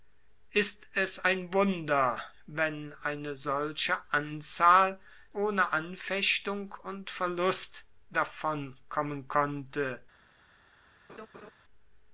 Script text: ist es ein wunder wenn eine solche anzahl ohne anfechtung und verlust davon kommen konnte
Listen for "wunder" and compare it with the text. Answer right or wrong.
right